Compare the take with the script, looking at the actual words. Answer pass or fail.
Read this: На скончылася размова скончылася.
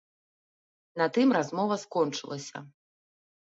fail